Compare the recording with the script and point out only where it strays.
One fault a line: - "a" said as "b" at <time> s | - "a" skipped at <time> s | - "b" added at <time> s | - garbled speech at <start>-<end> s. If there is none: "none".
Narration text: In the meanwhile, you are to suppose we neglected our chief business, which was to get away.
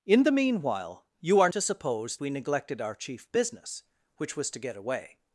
none